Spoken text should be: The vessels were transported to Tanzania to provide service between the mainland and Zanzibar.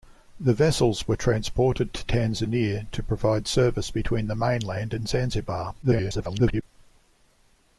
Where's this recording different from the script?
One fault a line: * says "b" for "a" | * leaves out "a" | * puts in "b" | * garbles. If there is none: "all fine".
* garbles